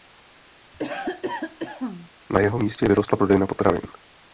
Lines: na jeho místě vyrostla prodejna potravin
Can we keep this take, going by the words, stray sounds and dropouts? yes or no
no